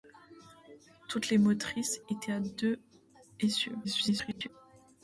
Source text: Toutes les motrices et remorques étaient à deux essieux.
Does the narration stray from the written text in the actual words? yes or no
yes